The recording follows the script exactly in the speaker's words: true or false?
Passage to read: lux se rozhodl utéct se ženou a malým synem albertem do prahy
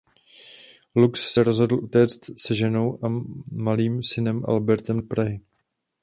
true